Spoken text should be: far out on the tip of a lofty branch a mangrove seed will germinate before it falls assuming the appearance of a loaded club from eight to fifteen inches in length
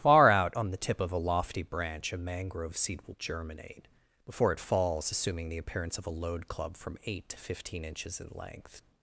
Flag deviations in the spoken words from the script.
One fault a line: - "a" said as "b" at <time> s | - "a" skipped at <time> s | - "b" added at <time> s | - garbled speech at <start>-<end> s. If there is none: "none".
- "loaded" said as "load" at 6.1 s